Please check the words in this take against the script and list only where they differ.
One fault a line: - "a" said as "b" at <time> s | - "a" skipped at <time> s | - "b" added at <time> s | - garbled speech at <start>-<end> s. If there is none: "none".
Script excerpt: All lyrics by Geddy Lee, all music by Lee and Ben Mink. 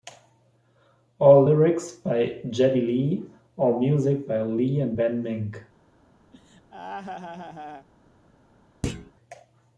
none